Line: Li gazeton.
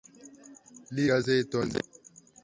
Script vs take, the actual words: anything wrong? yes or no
no